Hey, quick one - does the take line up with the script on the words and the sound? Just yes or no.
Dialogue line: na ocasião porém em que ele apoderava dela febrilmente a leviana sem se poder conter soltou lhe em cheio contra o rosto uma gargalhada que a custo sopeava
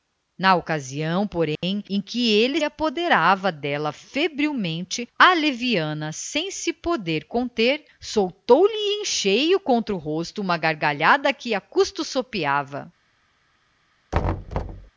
no